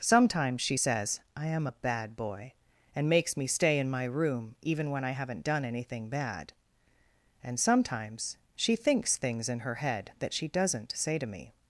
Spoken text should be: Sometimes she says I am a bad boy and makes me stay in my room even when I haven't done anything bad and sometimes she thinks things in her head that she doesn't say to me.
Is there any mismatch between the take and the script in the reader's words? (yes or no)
no